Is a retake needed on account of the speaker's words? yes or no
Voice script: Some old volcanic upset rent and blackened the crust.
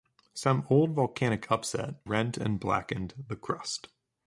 no